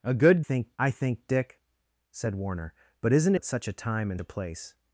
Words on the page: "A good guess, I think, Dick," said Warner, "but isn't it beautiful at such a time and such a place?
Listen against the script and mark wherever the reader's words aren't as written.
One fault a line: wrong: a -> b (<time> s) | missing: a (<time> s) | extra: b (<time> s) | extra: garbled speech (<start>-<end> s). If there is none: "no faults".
wrong: guess -> think (0.4 s)
missing: it beautiful (3.3 s)
missing: such (4.2 s)